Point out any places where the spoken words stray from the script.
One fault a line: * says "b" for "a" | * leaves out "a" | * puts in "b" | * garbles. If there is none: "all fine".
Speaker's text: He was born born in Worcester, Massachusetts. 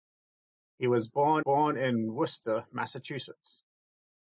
all fine